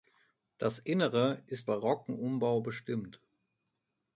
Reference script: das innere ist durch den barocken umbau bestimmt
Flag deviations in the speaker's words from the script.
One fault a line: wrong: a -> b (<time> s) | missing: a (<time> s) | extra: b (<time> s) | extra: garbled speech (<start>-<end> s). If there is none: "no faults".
missing: durch den (1.7 s)